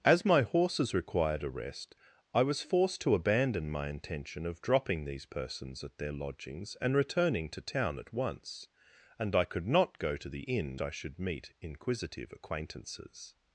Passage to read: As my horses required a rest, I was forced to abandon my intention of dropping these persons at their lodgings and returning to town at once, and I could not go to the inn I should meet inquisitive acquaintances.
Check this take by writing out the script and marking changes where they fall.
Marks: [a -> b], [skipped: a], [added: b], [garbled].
As my horses required a rest, I was forced to abandon my intention of dropping these persons at their lodgings and returning to town at once, and I could not go to the inn I should meet inquisitive acquaintances.